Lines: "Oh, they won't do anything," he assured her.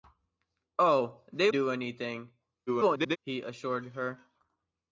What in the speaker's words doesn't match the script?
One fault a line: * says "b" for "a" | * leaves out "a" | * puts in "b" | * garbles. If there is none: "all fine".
* leaves out "won't"
* garbles